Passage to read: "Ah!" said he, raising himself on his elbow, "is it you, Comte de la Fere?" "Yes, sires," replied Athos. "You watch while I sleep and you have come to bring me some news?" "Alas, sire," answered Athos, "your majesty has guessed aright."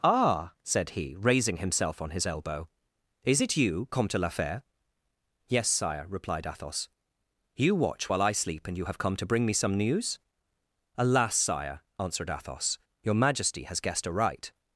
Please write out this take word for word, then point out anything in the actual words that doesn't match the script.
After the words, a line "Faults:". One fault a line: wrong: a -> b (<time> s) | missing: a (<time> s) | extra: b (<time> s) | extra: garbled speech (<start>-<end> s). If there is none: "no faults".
"Ah!" said he, raising himself on his elbow, "is it you, Comte de la Fere?" "Yes, sire," replied Athos. "You watch while I sleep and you have come to bring me some news?" "Alas, sire," answered Athos, "your majesty has guessed aright."
Faults:
wrong: sires -> sire (5.7 s)